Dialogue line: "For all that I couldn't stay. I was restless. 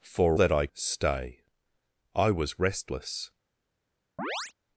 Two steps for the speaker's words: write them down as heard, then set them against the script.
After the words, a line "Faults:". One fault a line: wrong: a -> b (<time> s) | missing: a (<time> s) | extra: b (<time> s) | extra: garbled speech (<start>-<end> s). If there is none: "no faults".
"For that I stay. I was restless.
Faults:
missing: all (0.4 s)
missing: couldn't (0.7 s)